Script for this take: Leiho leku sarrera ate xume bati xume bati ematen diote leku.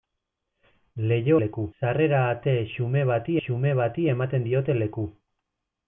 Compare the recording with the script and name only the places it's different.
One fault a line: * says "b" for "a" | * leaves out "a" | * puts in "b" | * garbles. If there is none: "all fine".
all fine